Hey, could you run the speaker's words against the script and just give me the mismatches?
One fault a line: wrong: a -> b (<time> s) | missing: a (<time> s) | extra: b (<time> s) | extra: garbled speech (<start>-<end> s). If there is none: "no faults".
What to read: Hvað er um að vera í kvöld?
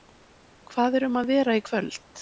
no faults